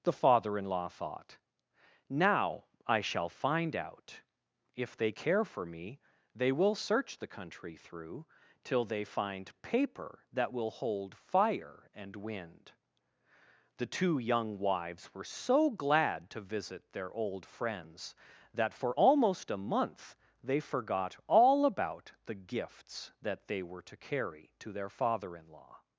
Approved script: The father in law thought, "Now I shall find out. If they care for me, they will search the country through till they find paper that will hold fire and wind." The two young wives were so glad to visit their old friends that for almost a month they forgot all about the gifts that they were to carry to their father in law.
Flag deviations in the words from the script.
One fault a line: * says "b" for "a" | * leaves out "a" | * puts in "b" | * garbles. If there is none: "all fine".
all fine